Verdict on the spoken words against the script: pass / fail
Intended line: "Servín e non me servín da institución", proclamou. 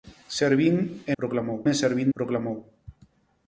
fail